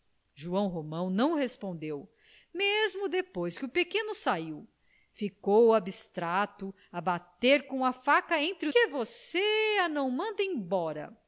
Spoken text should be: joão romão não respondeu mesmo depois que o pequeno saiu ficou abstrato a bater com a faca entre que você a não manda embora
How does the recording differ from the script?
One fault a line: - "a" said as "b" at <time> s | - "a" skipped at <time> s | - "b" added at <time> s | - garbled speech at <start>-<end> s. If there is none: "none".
none